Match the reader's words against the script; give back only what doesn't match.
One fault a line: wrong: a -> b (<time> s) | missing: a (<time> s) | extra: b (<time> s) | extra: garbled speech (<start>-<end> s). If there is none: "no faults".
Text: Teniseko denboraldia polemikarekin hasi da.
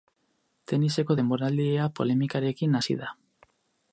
no faults